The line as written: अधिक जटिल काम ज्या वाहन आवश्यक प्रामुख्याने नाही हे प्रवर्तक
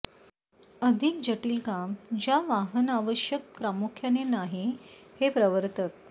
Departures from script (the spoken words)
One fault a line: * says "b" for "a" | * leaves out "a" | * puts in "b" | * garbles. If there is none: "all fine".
all fine